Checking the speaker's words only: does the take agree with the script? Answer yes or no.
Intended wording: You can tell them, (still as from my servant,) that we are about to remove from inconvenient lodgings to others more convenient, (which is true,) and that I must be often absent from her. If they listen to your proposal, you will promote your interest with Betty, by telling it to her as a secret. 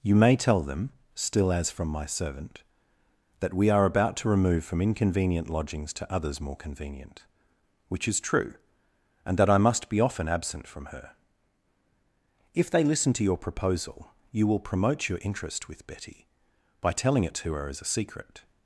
no